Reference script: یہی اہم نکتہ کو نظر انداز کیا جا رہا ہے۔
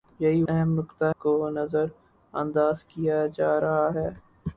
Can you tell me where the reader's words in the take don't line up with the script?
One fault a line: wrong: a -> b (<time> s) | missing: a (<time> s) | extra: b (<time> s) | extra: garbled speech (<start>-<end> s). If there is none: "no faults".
no faults